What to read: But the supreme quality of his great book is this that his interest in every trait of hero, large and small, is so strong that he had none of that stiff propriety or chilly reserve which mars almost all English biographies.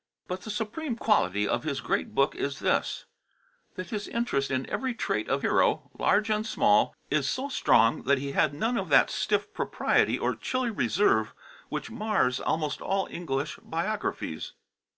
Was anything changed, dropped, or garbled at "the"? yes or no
no